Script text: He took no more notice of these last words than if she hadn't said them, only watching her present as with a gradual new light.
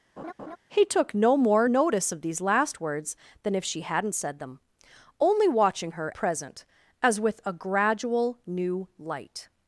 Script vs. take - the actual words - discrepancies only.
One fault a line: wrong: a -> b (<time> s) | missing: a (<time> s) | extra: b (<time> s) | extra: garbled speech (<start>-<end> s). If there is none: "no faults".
no faults